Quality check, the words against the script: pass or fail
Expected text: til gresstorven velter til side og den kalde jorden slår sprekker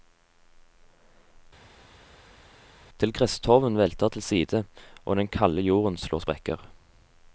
pass